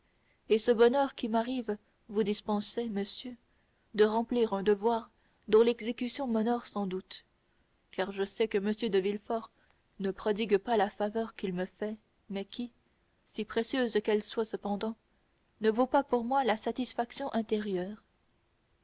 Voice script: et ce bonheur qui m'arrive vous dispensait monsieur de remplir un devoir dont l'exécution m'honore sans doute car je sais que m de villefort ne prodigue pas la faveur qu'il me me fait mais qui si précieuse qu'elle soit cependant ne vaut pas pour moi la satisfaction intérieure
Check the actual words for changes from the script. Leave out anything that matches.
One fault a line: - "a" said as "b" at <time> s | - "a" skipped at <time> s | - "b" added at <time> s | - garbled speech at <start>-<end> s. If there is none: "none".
- "me" skipped at 11.7 s